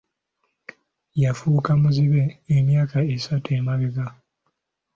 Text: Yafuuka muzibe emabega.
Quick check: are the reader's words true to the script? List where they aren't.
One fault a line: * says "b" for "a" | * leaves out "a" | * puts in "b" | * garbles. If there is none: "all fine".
* puts in "emyaka esatu"